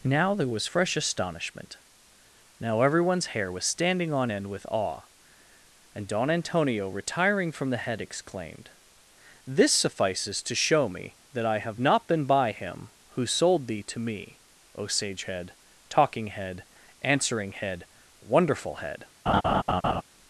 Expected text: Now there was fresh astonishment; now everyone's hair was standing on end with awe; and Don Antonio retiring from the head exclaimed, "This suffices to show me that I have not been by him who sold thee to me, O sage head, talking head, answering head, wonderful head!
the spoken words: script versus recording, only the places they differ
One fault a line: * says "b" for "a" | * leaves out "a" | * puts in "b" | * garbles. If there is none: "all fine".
all fine